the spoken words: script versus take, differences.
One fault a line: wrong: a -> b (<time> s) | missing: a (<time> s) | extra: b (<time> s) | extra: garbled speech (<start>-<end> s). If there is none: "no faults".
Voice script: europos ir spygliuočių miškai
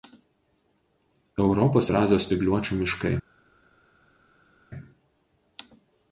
extra: azijos (2.0 s)